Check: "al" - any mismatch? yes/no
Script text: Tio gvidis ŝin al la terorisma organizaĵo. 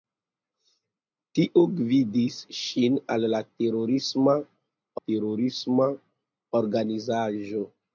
no